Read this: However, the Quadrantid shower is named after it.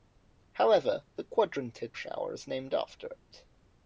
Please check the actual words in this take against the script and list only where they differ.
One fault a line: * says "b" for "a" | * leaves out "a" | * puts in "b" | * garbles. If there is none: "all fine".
all fine